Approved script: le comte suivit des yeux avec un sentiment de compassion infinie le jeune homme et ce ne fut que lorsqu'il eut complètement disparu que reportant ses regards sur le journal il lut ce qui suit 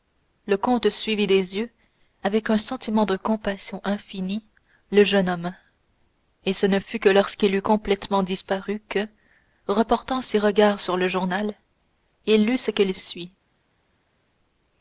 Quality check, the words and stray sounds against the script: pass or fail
pass